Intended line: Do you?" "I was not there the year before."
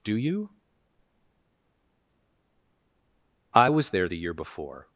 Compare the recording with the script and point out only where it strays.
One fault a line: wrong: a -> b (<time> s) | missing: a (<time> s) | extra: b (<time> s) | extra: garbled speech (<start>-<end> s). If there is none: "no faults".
missing: not (3.9 s)